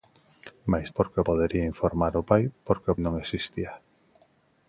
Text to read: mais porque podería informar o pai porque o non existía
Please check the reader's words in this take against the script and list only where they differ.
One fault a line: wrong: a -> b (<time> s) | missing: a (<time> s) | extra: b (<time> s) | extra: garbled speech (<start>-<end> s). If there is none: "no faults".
no faults